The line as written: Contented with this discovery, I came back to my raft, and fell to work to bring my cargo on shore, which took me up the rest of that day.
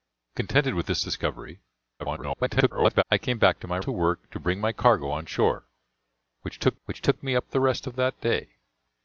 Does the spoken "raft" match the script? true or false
false